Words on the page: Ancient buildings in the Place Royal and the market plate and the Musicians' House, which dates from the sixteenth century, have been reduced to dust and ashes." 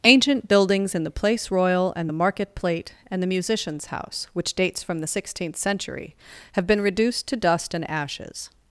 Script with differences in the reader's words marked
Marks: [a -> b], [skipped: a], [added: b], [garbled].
Ancient buildings in the Place Royal and the market plate and the Musicians' House, which dates from the sixteenth century, have been reduced to dust and ashes."